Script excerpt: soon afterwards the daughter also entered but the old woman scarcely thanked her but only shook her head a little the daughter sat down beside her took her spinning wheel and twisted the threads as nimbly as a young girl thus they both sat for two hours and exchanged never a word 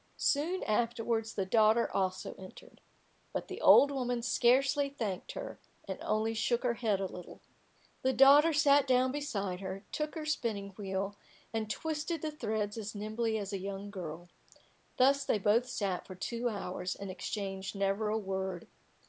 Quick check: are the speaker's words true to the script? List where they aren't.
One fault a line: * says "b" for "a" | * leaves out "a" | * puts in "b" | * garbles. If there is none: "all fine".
* says "and" for "but"